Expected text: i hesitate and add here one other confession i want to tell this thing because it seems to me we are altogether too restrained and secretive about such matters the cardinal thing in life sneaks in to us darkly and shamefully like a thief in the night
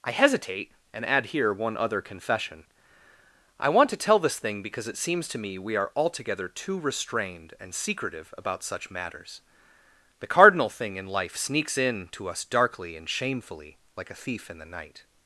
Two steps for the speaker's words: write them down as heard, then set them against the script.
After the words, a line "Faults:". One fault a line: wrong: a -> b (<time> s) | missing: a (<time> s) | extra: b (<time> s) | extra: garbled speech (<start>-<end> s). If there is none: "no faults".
i hesitate and add here one other confession i want to tell this thing because it seems to me we are altogether too restrained and secretive about such matters the cardinal thing in life sneaks in to us darkly and shamefully like a thief in the night
Faults:
no faults